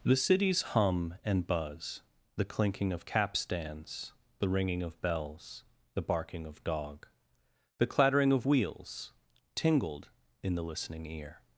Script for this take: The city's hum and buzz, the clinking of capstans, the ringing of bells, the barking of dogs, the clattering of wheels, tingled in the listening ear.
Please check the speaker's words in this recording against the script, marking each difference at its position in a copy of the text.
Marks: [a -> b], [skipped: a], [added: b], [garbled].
The city's hum and buzz, the clinking of capstans, the ringing of bells, the barking of [dogs, -> dog] the clattering of wheels, tingled in the listening ear.